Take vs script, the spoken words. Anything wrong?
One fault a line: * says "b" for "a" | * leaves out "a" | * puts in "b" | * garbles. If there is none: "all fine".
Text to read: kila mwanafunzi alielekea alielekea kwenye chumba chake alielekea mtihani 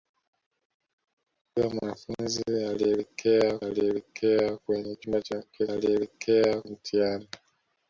all fine